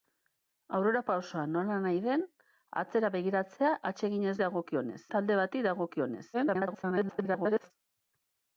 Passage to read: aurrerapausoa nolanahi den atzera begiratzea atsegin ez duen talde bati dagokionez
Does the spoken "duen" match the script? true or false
false